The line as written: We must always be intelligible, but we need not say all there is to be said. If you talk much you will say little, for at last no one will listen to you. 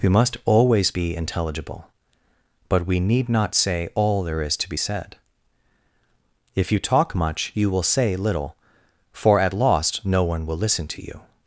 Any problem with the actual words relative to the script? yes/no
yes